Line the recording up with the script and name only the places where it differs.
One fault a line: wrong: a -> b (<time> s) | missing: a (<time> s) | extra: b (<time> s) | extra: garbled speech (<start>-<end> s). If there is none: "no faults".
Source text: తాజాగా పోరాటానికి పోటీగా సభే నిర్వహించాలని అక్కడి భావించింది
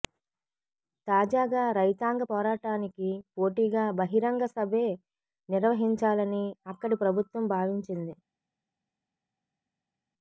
extra: రైతాంగ (1.8 s)
extra: బహిరంగ (4.0 s)
extra: ప్రభుత్వం (7.0 s)